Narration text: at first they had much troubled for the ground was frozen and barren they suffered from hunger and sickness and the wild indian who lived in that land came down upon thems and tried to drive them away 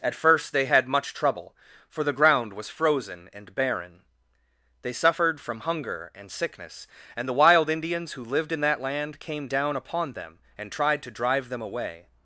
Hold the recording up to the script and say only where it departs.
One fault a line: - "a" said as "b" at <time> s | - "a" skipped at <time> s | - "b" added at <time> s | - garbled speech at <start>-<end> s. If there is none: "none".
- "troubled" said as "trouble" at 1.1 s
- "indian" said as "indians" at 7.7 s
- "thems" said as "them" at 10.1 s